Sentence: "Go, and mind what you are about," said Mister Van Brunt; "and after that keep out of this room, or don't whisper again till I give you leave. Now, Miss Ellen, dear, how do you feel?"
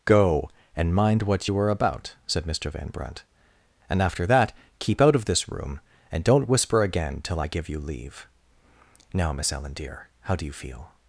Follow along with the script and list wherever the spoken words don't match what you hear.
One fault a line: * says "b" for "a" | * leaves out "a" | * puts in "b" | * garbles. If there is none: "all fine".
* says "and" for "or"